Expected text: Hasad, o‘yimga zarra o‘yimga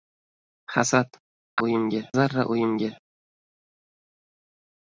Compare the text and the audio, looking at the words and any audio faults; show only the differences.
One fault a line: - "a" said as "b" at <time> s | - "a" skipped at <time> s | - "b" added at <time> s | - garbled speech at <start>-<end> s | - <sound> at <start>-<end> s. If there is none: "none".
none